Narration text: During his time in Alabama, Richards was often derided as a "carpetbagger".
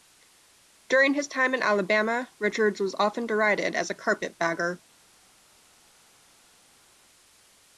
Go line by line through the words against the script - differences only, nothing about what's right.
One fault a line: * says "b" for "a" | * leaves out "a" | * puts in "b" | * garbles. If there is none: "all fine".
all fine